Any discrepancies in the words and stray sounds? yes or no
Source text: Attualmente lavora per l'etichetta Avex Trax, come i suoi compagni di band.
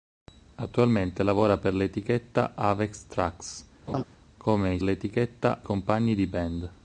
yes